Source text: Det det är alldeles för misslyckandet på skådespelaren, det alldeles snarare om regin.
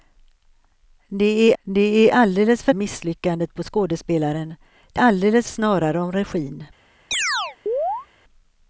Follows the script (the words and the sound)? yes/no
no